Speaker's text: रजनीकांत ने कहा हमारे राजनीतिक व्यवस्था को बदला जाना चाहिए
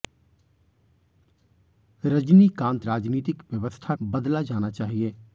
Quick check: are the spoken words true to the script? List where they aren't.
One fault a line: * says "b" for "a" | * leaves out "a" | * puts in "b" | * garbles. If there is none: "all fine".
* leaves out "ने कहा हमारे"
* leaves out "को"